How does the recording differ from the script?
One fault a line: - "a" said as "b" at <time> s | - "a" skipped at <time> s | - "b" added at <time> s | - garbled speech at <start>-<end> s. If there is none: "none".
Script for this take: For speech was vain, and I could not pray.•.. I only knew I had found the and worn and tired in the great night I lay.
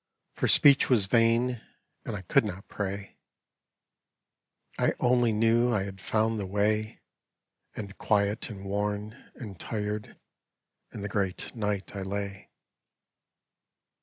- "way And quiet" added at 6.5 s